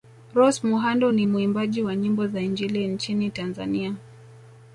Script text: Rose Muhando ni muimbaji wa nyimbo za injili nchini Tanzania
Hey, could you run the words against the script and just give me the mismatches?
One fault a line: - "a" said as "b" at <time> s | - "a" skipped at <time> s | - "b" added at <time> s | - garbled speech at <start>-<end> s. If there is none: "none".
none